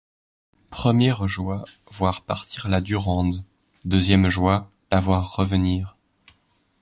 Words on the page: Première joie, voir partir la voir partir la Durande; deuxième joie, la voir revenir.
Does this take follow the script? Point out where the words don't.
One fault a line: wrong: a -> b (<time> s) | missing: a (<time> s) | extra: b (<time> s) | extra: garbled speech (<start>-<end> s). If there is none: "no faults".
missing: voir partir la (2.8 s)